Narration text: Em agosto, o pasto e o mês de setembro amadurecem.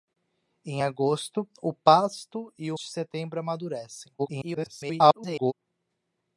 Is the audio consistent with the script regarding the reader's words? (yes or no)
no